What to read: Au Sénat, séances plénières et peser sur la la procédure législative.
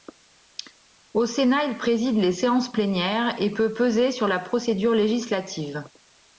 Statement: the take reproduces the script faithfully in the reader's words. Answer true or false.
false